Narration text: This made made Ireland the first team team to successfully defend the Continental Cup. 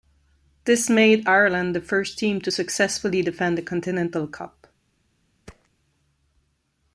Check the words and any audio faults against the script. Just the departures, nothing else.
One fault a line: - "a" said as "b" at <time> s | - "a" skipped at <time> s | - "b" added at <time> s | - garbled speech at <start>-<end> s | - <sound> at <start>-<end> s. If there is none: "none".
- "made" skipped at 1.3 s
- "team" skipped at 2.4 s
- thud at 5.5-5.7 s